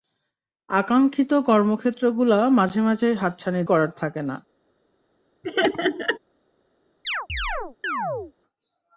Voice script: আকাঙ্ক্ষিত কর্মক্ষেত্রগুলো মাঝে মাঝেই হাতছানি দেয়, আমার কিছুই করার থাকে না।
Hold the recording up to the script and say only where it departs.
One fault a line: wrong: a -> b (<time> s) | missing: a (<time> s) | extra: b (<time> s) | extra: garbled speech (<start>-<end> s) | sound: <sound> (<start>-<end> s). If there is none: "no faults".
missing: দেয় আমার কিছুই (3.6 s)
sound: laugh (5.4-6.2 s)
sound: chirp (7.0-8.3 s)